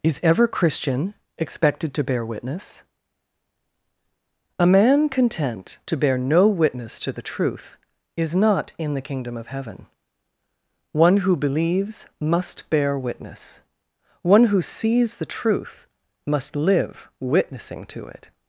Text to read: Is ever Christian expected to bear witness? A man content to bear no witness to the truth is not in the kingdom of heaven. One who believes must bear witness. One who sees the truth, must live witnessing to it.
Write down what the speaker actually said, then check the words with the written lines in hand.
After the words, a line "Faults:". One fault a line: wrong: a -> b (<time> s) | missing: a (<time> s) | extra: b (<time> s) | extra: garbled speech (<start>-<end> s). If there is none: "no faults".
Is ever Christian expected to bear witness? A man content to bear no witness to the truth is not in the kingdom of heaven. One who believes must bear witness. One who sees the truth, must live witnessing to it.
Faults:
no faults